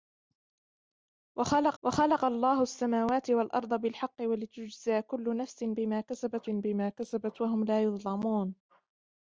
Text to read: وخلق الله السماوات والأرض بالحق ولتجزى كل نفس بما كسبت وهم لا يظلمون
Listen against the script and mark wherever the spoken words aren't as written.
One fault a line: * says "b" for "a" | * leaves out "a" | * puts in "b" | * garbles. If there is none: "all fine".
* puts in "وخلق"
* puts in "بما كسبت"